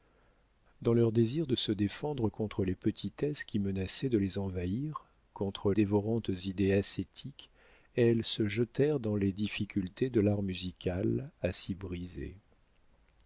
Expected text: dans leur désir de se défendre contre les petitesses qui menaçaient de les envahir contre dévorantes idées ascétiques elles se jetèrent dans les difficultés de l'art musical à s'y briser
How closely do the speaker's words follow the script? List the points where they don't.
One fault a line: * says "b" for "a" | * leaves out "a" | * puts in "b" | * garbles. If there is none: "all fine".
all fine